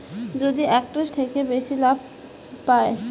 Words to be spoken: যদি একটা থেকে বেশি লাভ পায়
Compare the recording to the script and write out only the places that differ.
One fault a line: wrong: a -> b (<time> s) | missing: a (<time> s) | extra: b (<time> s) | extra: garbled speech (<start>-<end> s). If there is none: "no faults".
no faults